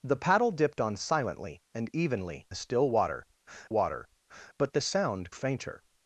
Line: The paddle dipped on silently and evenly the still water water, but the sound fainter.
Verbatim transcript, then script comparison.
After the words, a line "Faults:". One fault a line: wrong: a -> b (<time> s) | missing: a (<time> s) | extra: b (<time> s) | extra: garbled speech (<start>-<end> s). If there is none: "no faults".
The paddle dipped on silently and evenly the still water water, but the sound fainter.
Faults:
no faults